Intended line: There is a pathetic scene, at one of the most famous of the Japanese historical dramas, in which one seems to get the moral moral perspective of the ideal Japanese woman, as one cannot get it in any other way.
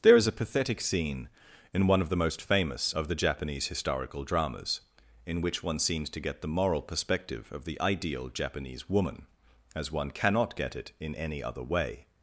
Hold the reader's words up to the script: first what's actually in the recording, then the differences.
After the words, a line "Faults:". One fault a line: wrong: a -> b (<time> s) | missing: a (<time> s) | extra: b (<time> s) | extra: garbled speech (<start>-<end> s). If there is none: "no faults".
There is a pathetic scene, in one of the most famous of the Japanese historical dramas, in which one seems to get the moral perspective of the ideal Japanese woman, as one cannot get it in any other way.
Faults:
wrong: at -> in (1.7 s)
missing: moral (6.8 s)